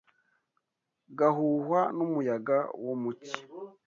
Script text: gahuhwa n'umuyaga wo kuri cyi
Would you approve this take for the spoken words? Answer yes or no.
no